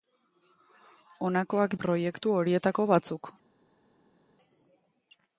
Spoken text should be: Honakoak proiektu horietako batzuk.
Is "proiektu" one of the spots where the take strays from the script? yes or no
no